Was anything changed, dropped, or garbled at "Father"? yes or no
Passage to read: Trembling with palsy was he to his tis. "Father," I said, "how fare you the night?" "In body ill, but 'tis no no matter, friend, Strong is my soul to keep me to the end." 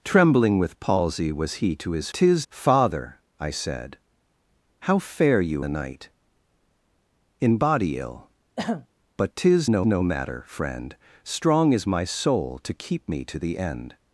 no